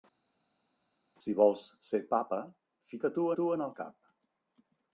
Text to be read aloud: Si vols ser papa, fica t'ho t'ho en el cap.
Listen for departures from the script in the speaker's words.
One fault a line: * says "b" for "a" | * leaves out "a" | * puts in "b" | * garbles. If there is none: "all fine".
all fine